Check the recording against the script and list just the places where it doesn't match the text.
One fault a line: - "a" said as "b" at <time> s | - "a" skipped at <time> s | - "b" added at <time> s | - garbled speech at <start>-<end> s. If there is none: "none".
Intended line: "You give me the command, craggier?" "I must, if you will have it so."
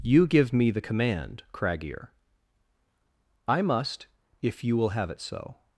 none